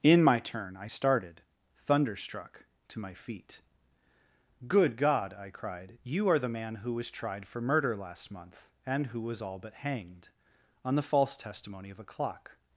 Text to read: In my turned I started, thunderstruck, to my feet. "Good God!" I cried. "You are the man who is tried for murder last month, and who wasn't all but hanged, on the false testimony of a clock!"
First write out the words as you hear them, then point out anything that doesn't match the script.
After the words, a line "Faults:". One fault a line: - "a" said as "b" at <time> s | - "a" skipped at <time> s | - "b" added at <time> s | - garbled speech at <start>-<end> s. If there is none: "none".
In my turn I started, thunderstruck, to my feet. "Good God!" I cried. "You are the man who was tried for murder last month, and who was all but hanged, on the false testimony of a clock!"
Faults:
- "turned" said as "turn" at 0.4 s
- "is" said as "was" at 6.9 s
- "wasn't" said as "was" at 9.2 s